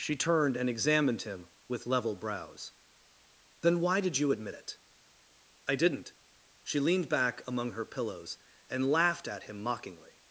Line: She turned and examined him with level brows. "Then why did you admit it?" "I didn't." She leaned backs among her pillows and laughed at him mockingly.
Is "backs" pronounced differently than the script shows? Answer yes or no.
yes